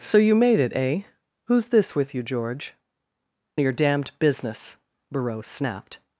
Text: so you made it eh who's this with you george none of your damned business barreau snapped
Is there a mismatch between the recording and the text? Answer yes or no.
yes